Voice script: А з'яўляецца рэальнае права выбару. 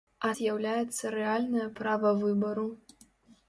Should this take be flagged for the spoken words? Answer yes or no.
no